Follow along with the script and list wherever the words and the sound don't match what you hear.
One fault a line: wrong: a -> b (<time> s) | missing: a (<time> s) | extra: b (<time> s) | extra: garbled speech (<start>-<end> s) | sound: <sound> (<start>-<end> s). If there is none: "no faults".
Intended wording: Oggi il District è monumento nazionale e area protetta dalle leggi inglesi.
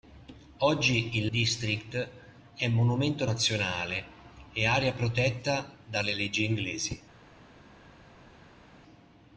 no faults